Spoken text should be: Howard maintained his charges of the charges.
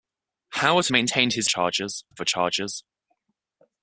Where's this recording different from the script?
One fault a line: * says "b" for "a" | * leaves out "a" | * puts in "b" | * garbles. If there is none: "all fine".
all fine